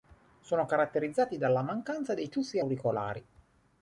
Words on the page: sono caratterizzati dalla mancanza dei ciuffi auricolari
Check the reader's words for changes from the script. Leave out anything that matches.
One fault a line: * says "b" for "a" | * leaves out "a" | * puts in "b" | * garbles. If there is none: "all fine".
all fine